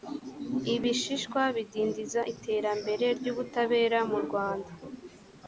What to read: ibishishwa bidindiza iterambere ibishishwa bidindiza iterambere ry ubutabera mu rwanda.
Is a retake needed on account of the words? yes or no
yes